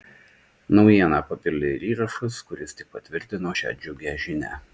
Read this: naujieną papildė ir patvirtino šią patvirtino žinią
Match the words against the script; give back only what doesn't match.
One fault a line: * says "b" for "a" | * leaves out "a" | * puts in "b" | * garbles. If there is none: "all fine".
* puts in "įrašas kuris tik"
* says "džiugią" for "patvirtino"